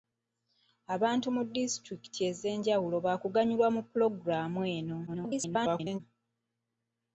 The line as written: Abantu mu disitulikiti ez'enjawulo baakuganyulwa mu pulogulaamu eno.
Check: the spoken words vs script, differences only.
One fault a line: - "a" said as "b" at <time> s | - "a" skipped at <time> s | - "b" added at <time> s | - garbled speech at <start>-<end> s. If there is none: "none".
- garbled speech at 5.1-6.0 s